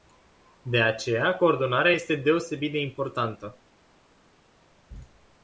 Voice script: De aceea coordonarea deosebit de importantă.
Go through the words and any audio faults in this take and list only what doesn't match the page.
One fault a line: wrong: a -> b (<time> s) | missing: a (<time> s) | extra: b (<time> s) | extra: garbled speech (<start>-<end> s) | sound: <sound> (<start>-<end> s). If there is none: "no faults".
extra: este (1.9 s)